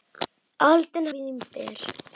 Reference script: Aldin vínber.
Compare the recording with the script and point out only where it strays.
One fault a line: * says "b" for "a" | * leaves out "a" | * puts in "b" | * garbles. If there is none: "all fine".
all fine